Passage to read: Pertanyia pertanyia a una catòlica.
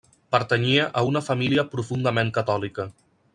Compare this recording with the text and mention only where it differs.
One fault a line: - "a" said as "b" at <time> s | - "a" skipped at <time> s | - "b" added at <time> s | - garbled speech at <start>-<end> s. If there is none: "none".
- "pertanyia" skipped at 0.9 s
- "família profundament" added at 1.3 s